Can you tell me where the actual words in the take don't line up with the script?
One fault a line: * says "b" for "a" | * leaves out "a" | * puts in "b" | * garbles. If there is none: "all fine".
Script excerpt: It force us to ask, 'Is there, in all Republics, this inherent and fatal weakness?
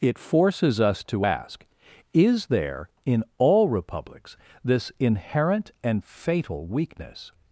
* says "forces" for "force"